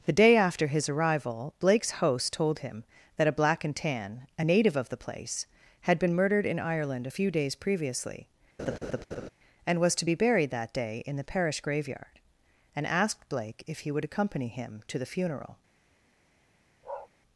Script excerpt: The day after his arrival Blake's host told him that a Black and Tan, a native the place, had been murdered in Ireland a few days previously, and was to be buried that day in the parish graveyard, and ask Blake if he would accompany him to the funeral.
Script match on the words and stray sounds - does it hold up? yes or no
no